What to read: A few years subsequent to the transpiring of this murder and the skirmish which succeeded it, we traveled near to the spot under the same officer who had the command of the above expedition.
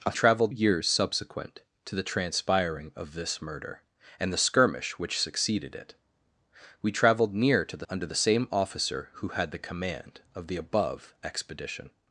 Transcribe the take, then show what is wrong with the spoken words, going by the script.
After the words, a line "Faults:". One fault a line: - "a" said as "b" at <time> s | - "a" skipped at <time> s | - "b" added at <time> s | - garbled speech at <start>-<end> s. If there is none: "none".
A traveled years subsequent to the transpiring of this murder and the skirmish which succeeded it, we traveled near to the under the same officer who had the command of the above expedition.
Faults:
- "few" said as "traveled" at 0.1 s
- "spot" skipped at 7.9 s